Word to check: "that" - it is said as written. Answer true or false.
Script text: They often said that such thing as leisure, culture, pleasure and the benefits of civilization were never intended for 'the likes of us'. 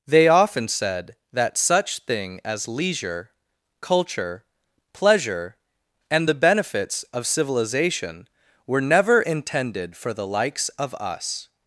true